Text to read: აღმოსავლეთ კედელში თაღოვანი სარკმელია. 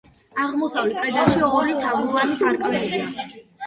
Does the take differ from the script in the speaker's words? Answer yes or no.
yes